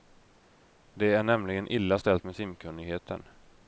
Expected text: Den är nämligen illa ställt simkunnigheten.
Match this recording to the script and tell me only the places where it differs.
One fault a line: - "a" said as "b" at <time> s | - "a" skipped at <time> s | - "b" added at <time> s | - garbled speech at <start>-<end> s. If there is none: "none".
- "Den" said as "Det" at 0.9 s
- "med" added at 2.2 s